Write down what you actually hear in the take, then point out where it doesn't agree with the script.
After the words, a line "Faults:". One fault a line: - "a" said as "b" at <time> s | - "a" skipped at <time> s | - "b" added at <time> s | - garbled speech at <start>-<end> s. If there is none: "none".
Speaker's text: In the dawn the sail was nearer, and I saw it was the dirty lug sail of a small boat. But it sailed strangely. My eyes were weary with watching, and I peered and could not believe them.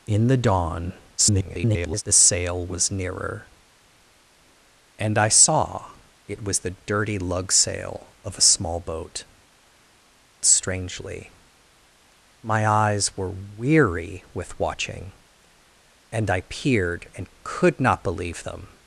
In the dawn [garbled] the sail was nearer, and I saw it was the dirty lug sail of a small boat. Strangely. My eyes were weary with watching, and I peered and could not believe them.
Faults:
- garbled speech at 1.2-2.0 s
- "But it sailed" skipped at 9.2 s